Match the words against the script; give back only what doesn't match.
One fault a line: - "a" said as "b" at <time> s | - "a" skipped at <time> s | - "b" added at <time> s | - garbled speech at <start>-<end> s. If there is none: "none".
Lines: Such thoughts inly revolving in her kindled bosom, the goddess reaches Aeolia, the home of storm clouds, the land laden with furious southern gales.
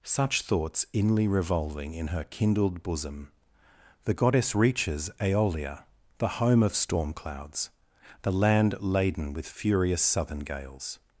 none